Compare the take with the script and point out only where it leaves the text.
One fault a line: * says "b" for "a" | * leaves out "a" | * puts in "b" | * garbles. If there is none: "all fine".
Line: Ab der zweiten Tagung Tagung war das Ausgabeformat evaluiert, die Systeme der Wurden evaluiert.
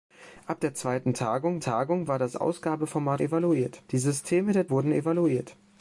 all fine